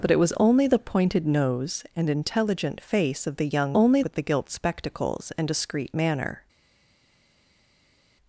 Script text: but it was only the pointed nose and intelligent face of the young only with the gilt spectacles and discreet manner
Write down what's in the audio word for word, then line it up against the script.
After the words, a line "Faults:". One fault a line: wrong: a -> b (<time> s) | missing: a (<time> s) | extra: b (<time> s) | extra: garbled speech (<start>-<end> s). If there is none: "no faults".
but it was only the pointed nose and intelligent face of the young only with the gilt spectacles and discreet manner
Faults:
no faults